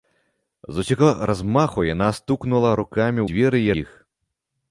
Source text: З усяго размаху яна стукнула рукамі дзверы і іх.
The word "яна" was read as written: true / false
true